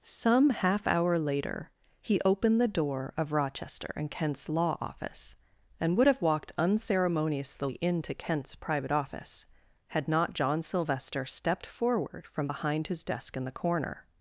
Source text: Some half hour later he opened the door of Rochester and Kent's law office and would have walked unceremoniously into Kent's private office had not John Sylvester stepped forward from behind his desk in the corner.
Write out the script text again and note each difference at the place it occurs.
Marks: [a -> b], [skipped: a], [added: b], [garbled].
Some half hour later he opened the door of Rochester and Kent's law office and would have walked unceremoniously into Kent's private office had not John Sylvester stepped forward from behind his desk in the corner.